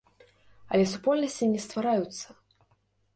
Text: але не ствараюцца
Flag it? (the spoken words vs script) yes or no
yes